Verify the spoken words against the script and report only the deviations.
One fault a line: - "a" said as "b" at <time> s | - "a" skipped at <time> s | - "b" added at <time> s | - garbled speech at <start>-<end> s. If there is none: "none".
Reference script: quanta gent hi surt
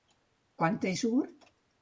- "gent" skipped at 0.9 s